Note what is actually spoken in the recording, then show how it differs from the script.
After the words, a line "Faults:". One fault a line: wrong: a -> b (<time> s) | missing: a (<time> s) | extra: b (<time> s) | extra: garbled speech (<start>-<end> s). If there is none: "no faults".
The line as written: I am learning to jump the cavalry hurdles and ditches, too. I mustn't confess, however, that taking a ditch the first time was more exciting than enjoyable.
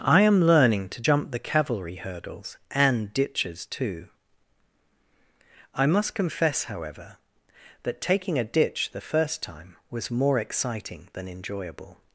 I am learning to jump the cavalry hurdles and ditches, too. I must confess, however, that taking a ditch the first time was more exciting than enjoyable.
Faults:
wrong: mustn't -> must (5.9 s)